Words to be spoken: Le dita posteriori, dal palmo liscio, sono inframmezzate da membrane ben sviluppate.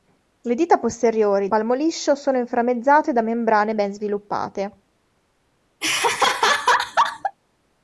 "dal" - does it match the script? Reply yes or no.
no